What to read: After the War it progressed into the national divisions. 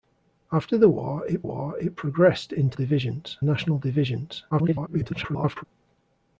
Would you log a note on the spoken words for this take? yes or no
yes